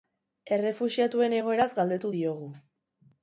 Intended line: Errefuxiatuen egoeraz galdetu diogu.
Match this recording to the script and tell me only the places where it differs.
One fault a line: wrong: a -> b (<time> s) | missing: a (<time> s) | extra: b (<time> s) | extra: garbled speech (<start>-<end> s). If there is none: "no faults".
no faults